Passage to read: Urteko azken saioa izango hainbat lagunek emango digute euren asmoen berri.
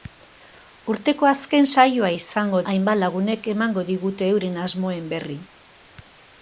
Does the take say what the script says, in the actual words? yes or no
yes